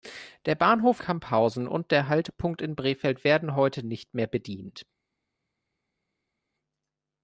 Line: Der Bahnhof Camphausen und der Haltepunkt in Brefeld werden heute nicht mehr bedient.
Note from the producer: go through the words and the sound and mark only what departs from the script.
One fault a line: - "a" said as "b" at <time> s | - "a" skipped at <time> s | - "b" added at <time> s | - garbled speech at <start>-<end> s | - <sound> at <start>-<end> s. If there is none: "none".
none